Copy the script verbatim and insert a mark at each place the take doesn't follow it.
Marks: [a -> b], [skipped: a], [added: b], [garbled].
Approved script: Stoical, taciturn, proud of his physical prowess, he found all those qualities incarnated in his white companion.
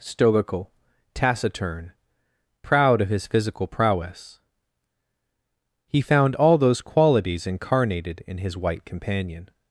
Stoical, taciturn, proud of his physical prowess, he found all those qualities incarnated in his white companion.